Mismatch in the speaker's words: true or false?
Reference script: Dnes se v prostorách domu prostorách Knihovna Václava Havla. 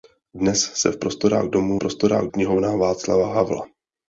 false